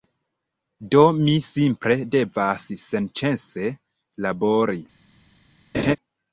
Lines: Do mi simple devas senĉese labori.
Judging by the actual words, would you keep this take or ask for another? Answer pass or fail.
pass